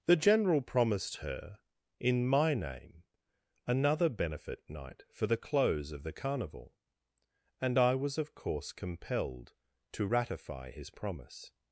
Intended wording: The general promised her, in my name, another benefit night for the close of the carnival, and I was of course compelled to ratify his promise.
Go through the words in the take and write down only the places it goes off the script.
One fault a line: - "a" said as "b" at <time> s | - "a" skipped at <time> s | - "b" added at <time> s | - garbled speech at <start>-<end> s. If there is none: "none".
none